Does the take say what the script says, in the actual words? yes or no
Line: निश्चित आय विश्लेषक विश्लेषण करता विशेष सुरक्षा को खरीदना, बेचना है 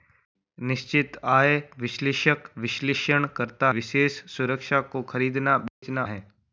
yes